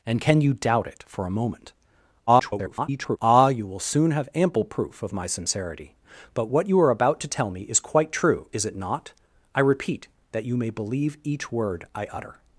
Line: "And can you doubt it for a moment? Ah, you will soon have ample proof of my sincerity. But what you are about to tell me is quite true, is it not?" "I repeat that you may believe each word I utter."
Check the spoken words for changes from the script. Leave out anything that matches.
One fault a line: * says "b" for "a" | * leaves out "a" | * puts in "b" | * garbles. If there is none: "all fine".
* garbles